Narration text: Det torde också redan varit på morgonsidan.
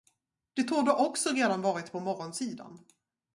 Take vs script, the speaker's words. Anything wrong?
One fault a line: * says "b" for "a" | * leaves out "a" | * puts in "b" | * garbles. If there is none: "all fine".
all fine